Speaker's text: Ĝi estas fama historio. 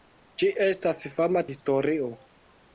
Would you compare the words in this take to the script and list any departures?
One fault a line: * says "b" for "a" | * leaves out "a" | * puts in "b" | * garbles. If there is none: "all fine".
all fine